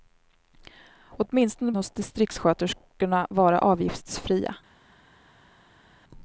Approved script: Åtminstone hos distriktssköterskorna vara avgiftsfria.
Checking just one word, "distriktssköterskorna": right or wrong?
right